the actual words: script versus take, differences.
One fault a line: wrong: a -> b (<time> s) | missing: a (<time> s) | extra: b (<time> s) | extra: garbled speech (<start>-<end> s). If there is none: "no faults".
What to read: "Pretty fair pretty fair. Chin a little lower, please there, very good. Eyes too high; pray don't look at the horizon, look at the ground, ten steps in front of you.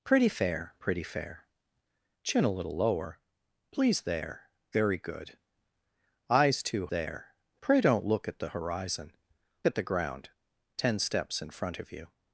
wrong: high -> there (6.9 s)
missing: look (9.2 s)